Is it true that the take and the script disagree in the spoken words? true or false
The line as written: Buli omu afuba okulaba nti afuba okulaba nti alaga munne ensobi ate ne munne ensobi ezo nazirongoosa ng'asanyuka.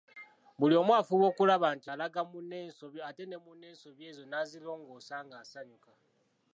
true